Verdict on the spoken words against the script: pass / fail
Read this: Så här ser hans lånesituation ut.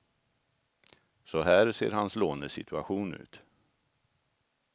pass